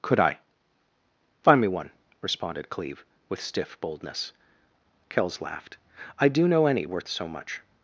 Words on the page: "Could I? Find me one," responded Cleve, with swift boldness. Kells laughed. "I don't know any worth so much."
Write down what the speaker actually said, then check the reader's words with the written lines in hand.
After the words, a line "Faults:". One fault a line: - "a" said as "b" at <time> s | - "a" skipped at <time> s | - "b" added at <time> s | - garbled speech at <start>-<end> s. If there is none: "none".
"Could I? Find me one," responded Cleve, with stiff boldness. Kells laughed. "I do know any worth so much."
Faults:
- "swift" said as "stiff" at 3.4 s
- "don't" said as "do" at 6.3 s